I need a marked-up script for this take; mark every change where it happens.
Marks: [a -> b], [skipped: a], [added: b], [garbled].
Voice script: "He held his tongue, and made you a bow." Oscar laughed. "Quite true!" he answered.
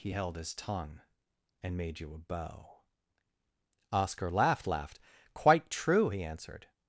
"He held his tongue, and made you a bow." Oscar laughed. [added: laughed] "Quite true!" he answered.